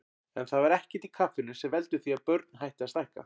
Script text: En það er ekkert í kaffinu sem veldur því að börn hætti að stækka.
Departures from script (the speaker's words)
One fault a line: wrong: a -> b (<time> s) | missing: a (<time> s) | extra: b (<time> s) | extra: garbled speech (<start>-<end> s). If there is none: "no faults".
no faults